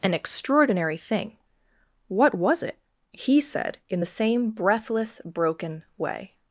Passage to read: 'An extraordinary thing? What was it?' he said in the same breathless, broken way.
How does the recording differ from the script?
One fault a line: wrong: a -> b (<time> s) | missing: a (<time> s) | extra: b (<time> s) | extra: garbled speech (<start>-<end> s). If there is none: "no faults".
no faults